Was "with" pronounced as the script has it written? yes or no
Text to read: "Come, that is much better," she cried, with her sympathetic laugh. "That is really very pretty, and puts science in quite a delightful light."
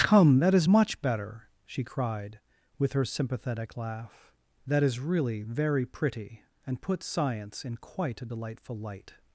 yes